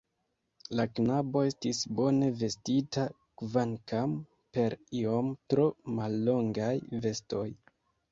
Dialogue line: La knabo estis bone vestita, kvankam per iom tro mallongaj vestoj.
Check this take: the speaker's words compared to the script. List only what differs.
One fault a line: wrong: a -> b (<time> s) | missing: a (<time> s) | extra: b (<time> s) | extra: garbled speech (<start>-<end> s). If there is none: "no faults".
no faults